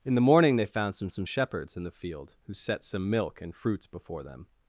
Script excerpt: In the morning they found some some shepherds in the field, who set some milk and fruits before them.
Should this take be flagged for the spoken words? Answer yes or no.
no